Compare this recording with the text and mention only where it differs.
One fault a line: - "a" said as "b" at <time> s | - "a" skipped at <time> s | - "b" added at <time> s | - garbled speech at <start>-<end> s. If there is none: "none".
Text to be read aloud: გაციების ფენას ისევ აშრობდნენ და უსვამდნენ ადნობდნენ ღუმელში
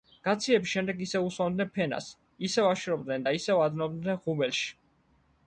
- "შემდეგ ისევ უსვამდნენ" added at 0.8 s
- "უსვამდნენ" said as "ისევ" at 3.4 s